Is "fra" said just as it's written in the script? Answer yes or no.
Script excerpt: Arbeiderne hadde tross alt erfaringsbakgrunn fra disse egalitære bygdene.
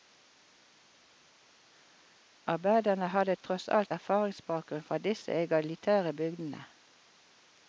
yes